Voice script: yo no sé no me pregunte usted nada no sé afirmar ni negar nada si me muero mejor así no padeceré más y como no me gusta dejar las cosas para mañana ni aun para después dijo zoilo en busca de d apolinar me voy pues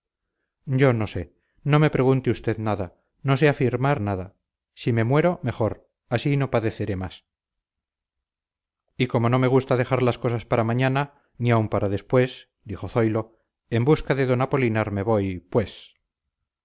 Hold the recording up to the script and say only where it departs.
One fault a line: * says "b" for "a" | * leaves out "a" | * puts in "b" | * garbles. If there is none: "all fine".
* leaves out "ni negar"